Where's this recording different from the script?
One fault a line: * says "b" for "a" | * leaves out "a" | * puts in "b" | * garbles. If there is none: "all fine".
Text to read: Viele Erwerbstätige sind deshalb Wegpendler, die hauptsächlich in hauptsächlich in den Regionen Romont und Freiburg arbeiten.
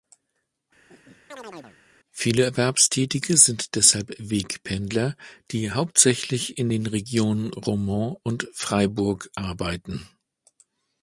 * leaves out "hauptsächlich in"